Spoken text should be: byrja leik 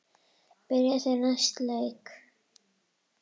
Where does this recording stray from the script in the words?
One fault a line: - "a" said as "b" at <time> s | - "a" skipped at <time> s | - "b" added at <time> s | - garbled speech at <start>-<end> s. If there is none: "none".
- "þeir næsta" added at 1.0 s